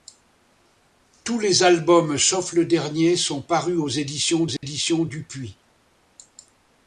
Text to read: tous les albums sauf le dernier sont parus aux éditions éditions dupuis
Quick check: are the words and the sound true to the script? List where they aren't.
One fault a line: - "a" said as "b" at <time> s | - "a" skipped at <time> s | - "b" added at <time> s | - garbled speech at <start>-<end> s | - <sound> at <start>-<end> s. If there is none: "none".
- dropout at 4.6-4.6 s